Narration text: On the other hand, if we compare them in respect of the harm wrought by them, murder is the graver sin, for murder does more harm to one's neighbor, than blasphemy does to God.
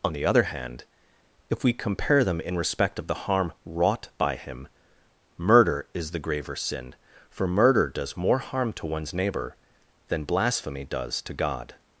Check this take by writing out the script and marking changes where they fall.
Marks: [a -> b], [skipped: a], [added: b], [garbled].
On the other hand, if we compare them in respect of the harm wrought by [them, -> him] murder is the graver sin, for murder does more harm to one's neighbor, than blasphemy does to God.